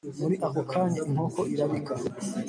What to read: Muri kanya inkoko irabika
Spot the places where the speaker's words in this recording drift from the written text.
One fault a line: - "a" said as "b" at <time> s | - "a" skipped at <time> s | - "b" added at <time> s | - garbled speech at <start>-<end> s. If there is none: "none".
- "ako" added at 0.5 s